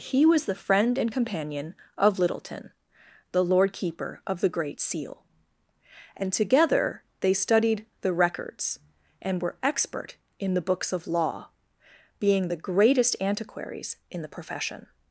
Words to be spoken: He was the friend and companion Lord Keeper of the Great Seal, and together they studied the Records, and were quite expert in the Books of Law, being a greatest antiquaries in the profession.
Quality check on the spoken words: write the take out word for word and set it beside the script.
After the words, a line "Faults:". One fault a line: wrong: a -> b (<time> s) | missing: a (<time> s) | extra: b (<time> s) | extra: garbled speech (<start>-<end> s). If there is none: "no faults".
He was the friend and companion of Littleton, the Lord Keeper of the Great Seal, and together they studied the Records, and were expert in the Books of Law, being the greatest antiquaries in the profession.
Faults:
extra: of Littleton the (2.0 s)
missing: quite (9.6 s)
wrong: a -> the (12.5 s)